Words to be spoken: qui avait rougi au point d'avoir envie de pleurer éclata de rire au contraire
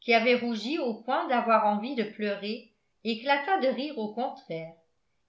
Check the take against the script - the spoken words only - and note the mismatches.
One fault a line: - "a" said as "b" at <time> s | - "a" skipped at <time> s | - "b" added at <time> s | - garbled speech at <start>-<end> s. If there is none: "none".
none